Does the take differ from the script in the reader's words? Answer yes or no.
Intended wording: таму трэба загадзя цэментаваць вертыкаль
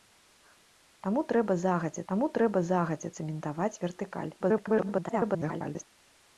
yes